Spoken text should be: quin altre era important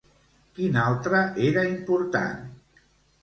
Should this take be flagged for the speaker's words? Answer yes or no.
no